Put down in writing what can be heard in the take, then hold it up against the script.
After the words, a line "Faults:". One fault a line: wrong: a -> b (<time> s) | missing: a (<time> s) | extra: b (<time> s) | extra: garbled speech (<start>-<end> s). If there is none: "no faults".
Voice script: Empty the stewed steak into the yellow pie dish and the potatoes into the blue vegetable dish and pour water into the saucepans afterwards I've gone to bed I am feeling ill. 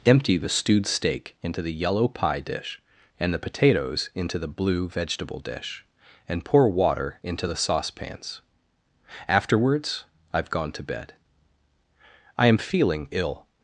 Empty the stewed steak into the yellow pie dish and the potatoes into the blue vegetable dish and pour water into the saucepans afterwards I've gone to bed I am feeling ill.
Faults:
no faults